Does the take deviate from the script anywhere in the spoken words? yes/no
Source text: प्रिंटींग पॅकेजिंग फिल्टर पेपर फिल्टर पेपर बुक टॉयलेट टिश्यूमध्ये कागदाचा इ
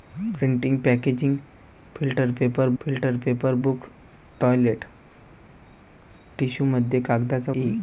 no